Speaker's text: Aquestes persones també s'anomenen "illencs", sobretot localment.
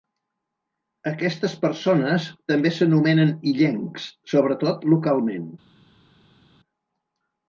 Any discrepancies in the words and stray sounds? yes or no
no